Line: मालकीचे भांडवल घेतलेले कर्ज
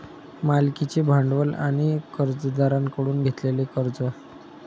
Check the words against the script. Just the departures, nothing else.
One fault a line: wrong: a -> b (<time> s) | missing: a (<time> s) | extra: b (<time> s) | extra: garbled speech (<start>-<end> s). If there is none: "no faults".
extra: आणि कर्जदारांकडून (1.6 s)